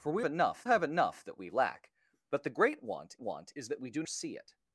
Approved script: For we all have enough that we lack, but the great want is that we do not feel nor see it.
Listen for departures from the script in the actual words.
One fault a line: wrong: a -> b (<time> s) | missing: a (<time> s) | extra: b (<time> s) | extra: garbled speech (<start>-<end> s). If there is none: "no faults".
wrong: all -> enough (0.2 s)
extra: want (3.2 s)
missing: not feel nor (4.0 s)